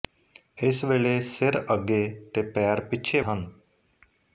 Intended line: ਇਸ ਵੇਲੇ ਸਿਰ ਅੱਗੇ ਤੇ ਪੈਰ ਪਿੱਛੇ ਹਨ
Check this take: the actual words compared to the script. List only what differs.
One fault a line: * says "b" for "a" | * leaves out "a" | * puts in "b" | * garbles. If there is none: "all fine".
all fine